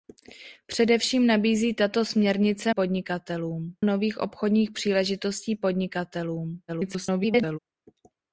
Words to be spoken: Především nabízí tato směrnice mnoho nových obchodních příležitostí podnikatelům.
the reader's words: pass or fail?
fail